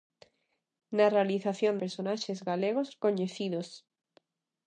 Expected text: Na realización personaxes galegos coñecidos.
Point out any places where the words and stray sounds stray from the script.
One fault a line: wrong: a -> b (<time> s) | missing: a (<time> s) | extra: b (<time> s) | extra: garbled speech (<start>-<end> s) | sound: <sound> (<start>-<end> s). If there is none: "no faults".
no faults